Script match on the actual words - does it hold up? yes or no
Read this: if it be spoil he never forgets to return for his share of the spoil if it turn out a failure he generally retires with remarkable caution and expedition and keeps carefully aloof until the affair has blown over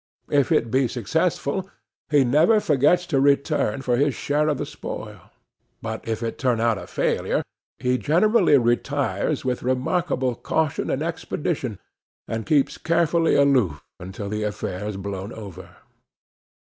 no